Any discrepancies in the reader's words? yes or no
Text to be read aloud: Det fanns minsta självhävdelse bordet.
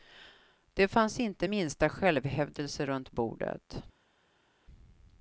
yes